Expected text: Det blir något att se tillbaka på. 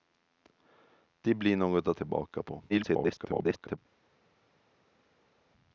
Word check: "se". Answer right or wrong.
wrong